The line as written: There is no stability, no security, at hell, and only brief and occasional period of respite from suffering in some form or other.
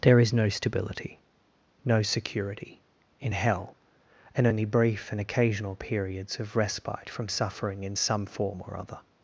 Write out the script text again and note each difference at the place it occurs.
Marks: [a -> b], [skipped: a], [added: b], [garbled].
There is no stability, no security, [at -> in] hell, and only brief and occasional [period -> periods] of respite from suffering in some form or other.